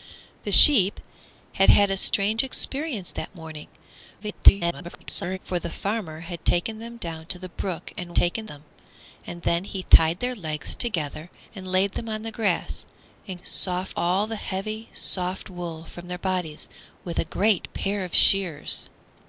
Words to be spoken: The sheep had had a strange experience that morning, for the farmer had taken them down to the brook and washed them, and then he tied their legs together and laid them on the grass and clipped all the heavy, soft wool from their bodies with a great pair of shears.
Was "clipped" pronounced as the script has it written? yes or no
no